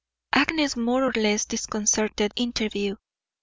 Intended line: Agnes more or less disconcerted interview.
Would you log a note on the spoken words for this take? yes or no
no